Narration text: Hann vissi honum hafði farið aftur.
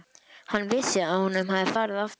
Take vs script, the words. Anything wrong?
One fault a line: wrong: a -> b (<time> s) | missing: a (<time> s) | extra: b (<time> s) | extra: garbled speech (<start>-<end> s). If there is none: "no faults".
extra: að (1.1 s)